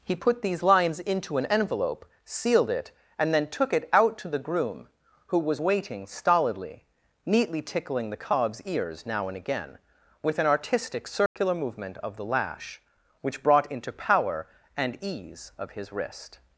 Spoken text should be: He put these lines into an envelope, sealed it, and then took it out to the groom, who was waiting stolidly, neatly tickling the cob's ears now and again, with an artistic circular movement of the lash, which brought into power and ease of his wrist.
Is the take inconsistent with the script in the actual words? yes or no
no